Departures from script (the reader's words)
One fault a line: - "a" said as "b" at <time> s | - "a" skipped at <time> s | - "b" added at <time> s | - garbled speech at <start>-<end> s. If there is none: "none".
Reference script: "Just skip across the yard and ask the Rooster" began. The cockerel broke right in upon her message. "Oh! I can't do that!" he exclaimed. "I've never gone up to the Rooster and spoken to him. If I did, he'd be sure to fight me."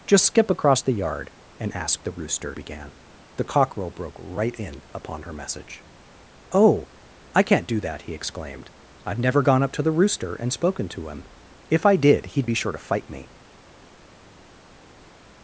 none